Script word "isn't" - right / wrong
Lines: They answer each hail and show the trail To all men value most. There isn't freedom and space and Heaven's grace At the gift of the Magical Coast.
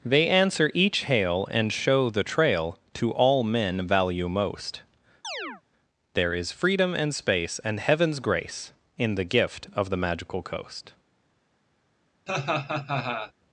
wrong